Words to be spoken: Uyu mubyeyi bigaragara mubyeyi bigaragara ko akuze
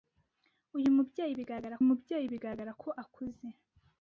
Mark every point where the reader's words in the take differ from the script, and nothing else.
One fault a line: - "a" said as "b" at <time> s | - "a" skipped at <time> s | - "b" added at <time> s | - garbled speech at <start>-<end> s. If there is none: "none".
none